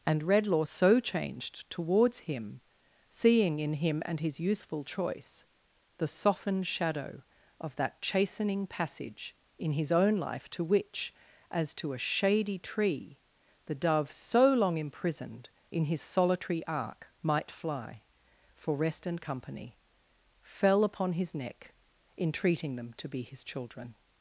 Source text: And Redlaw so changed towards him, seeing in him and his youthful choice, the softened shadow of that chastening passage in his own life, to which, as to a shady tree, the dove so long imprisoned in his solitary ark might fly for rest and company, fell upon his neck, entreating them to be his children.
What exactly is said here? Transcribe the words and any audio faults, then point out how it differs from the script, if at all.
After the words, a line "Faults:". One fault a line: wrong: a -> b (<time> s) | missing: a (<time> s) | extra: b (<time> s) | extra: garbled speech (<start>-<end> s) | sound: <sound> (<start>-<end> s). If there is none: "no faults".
And Redlaw so changed towards him, seeing in him and his youthful choice, the softened shadow of that chastening passage in his own life, to which, as to a shady tree, the dove so long imprisoned in his solitary ark might fly for rest and company, fell upon his neck, entreating them to be his children.
Faults:
no faults